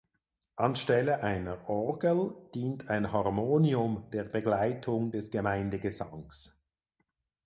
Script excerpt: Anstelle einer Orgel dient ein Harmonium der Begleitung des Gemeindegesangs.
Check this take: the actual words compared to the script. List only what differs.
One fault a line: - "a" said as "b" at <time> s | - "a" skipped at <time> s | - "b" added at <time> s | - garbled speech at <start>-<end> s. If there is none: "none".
none